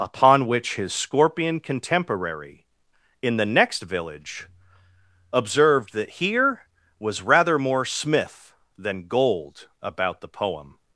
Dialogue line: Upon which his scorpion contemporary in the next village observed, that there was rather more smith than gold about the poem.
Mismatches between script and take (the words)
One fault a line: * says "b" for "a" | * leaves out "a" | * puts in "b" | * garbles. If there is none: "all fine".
* says "here" for "there"